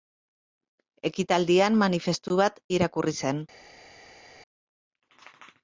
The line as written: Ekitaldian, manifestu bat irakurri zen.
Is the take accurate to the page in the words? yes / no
yes